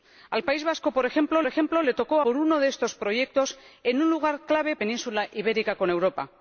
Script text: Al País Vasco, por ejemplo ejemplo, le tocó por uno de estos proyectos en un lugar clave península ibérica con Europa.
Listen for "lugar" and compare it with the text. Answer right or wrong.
right